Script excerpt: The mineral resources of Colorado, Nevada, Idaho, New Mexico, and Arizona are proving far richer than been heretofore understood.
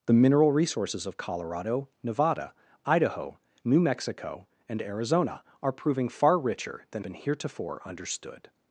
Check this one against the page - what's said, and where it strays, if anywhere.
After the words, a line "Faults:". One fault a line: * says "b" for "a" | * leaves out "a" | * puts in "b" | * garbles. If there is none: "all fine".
The mineral resources of Colorado, Nevada, Idaho, New Mexico, and Arizona are proving far richer than been heretofore understood.
Faults:
all fine